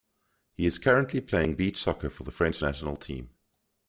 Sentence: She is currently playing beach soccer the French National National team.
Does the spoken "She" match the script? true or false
false